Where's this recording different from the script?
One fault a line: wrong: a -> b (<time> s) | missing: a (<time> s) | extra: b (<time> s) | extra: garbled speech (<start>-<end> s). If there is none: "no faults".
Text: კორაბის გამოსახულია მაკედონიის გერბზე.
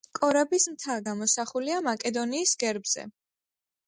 extra: მთა (0.7 s)